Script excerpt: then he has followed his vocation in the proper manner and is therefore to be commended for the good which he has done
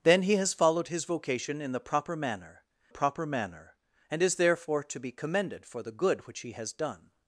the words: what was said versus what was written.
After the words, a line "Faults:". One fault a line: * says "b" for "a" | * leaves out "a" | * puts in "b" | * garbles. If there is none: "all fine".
then he has followed his vocation in the proper manner proper manner and is therefore to be commended for the good which he has done
Faults:
* puts in "proper manner"